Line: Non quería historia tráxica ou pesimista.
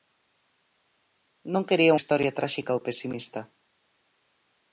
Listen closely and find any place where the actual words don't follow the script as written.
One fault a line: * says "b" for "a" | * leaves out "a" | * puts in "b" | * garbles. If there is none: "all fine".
all fine